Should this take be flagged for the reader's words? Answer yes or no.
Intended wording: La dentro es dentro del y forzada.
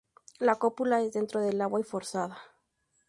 yes